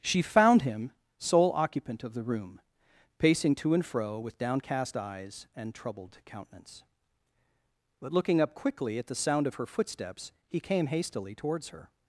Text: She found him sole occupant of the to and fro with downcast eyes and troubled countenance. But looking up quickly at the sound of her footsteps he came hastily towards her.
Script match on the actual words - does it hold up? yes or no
no